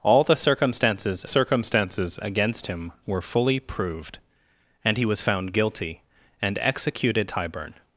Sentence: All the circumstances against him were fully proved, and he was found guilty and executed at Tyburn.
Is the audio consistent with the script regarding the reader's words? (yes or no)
no